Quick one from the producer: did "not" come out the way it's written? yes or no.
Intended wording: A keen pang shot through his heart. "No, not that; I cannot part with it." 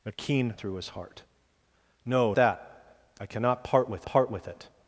no